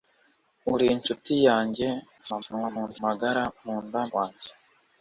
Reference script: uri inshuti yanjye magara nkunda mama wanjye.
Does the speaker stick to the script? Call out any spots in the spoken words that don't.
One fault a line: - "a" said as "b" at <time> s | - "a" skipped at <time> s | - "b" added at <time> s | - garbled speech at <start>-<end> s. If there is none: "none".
- garbled speech at 2.2-3.0 s
- "mama" skipped at 4.0 s